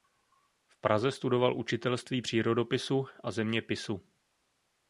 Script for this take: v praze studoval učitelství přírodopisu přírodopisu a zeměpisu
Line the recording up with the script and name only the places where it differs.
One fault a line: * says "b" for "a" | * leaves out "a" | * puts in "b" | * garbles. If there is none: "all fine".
* leaves out "přírodopisu"